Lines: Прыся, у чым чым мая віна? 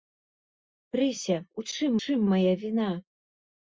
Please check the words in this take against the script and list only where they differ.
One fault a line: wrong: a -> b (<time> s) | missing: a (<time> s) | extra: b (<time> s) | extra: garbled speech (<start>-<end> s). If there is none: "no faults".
no faults